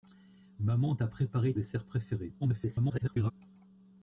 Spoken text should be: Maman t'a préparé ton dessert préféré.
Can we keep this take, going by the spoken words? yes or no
no